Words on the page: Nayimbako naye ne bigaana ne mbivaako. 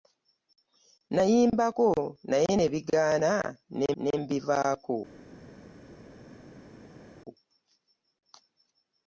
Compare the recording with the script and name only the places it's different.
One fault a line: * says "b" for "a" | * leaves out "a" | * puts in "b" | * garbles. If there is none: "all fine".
* puts in "ne"